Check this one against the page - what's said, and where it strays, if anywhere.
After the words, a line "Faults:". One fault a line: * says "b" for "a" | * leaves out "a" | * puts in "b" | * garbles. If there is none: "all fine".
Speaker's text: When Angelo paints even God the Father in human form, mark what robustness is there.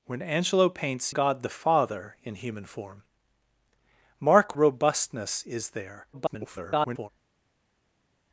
When Angelo paints God the Father in human form, mark robustness is there. [garbled]
Faults:
* leaves out "even"
* leaves out "what"
* garbles